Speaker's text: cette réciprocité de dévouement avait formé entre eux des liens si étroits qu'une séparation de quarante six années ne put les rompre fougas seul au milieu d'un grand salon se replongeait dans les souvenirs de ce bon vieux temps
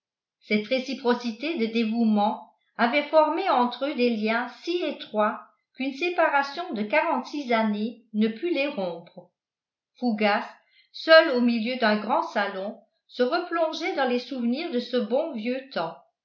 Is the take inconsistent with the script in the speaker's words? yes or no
no